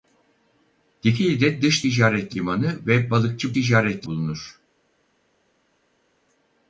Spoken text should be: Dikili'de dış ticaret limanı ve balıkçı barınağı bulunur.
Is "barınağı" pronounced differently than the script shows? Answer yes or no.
yes